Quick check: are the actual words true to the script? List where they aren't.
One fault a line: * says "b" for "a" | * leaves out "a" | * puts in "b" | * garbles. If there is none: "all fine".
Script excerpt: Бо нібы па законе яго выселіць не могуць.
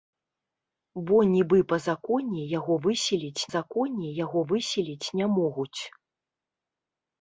* puts in "законе яго выселіць"